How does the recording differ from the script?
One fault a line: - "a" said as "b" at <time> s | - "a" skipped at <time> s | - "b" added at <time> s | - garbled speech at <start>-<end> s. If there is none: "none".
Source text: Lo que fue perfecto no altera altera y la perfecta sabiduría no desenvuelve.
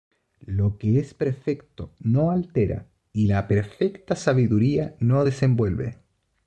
- "fue" said as "es" at 1.0 s
- "altera" skipped at 2.9 s